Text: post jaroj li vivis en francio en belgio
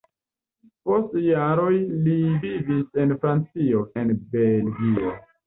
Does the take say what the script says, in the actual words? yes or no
yes